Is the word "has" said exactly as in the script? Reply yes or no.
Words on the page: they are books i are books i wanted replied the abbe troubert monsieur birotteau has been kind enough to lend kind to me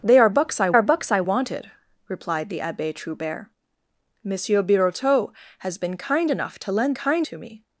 yes